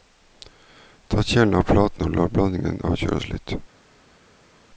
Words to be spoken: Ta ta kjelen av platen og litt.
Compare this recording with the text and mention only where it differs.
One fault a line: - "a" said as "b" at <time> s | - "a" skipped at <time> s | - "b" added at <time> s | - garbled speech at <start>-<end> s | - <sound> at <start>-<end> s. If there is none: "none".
- "ta" skipped at 1.2 s
- "la blandingen avkjøles" added at 2.2 s